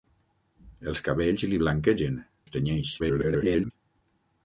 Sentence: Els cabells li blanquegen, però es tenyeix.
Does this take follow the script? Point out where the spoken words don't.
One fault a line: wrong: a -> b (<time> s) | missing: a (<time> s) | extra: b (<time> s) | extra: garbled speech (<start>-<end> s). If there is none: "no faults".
missing: però (2.2 s)
extra: garbled speech (3.0-3.7 s)